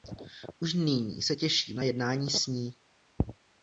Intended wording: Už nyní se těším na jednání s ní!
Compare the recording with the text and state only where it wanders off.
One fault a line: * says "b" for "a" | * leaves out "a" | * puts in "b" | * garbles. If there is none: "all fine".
all fine